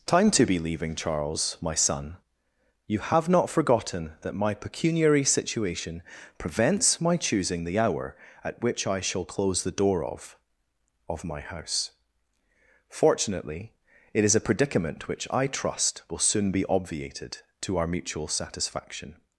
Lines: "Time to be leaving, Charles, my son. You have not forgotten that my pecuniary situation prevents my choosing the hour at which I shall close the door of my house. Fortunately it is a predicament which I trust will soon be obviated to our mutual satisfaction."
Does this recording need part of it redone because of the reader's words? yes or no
yes